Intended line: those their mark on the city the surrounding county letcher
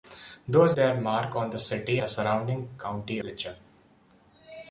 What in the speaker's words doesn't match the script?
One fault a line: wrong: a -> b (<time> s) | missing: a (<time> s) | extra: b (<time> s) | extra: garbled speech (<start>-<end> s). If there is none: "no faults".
no faults